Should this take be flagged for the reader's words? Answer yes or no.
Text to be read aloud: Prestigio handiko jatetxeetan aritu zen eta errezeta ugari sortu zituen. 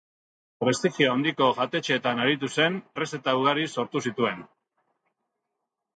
yes